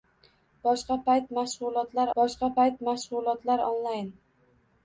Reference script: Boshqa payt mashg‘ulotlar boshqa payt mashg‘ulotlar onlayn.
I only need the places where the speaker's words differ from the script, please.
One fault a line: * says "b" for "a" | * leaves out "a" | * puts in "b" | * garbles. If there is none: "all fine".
all fine